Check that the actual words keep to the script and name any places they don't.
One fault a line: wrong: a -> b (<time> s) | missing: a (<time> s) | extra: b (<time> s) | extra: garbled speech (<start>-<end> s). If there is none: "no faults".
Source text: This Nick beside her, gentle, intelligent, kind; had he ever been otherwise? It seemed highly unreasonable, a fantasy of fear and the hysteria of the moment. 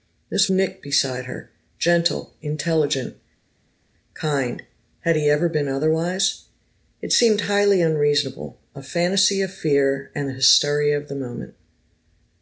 no faults